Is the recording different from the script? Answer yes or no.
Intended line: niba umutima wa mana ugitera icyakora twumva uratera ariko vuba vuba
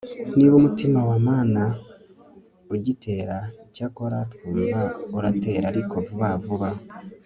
no